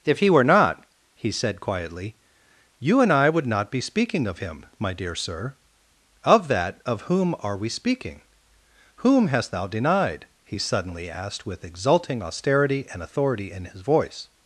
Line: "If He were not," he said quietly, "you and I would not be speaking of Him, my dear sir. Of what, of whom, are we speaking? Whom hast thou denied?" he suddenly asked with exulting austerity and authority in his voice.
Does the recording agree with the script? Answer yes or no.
no